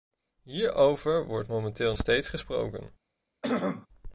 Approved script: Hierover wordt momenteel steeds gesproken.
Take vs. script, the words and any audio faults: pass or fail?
fail